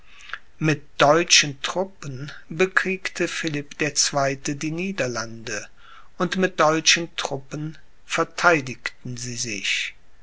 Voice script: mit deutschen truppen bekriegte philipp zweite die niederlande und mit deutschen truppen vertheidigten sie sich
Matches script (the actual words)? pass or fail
fail